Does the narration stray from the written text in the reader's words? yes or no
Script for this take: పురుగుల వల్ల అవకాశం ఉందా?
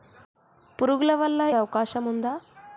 no